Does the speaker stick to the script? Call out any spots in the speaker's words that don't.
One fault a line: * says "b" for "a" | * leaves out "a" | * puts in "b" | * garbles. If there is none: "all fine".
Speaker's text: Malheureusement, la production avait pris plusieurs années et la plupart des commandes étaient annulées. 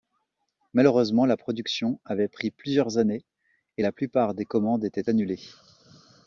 all fine